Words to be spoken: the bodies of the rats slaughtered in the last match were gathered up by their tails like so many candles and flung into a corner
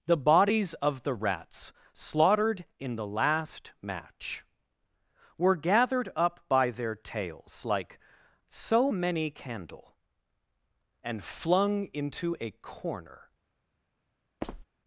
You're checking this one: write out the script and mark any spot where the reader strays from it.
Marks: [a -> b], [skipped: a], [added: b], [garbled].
the bodies of the rats slaughtered in the last match were gathered up by their tails like so many [candles -> candle] and flung into a corner